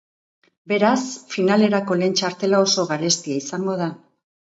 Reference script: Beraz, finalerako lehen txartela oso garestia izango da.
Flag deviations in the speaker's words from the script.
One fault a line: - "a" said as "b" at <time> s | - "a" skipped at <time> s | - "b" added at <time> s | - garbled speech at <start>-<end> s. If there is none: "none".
none